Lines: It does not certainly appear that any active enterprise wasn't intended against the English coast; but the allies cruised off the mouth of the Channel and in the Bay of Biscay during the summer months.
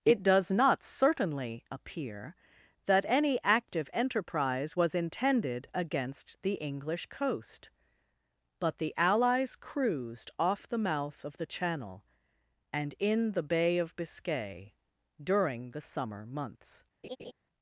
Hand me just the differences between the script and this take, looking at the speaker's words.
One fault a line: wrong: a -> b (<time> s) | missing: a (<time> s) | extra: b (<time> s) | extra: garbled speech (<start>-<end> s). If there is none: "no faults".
wrong: wasn't -> was (4.7 s)